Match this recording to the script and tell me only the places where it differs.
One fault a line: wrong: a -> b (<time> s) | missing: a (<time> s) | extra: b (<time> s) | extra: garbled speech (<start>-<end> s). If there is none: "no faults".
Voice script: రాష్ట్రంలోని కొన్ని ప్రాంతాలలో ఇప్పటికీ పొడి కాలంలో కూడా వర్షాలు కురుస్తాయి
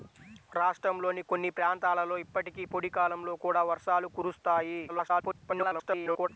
extra: garbled speech (4.9-6.3 s)